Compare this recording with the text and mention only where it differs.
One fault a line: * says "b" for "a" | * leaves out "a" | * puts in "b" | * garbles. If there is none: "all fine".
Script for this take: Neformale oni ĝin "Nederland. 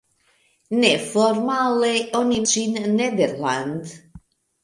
all fine